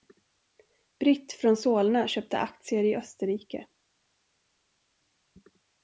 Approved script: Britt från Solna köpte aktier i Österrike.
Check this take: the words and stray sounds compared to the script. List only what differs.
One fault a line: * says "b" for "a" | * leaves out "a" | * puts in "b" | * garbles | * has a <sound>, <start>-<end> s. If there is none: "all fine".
all fine